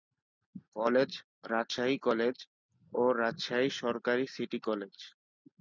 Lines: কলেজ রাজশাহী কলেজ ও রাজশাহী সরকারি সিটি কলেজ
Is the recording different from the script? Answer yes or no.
no